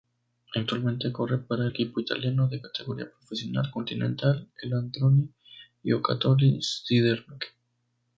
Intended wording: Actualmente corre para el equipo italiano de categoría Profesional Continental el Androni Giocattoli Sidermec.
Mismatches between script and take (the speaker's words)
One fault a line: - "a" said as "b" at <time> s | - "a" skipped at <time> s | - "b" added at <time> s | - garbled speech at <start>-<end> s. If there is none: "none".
- "el" skipped at 1.7 s